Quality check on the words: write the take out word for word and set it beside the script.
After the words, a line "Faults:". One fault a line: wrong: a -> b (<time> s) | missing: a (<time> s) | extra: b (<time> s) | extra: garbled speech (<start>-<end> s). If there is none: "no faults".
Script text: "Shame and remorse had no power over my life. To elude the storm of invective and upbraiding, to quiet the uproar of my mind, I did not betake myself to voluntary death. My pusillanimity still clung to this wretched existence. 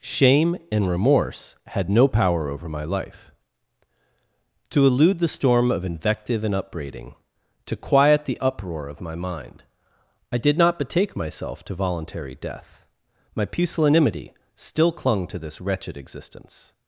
"Shame and remorse had no power over my life. To elude the storm of invective and upbraiding, to quiet the uproar of my mind, I did not betake myself to voluntary death. My pusillanimity still clung to this wretched existence.
Faults:
no faults